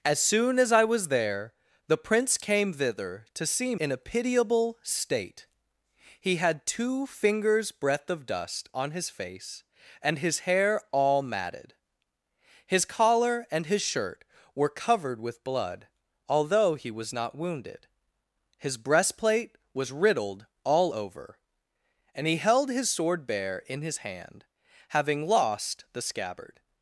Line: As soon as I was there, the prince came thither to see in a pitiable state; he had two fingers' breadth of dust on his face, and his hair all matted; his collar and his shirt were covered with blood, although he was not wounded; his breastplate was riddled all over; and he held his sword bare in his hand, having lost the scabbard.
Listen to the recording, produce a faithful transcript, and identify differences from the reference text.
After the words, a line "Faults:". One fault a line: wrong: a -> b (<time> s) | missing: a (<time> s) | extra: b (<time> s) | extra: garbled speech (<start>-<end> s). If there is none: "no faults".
As soon as I was there, the prince came thither to see in a pitiable state; he had two fingers' breadth of dust on his face, and his hair all matted; his collar and his shirt were covered with blood, although he was not wounded; his breastplate was riddled all over; and he held his sword bare in his hand, having lost the scabbard.
Faults:
no faults